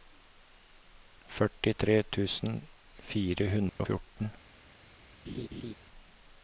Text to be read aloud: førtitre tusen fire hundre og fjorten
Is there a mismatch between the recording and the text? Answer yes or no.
no